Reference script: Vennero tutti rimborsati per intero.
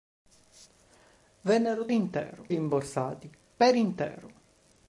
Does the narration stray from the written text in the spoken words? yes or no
yes